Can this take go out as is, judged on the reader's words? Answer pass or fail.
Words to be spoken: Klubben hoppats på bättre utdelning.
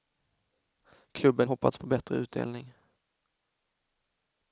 pass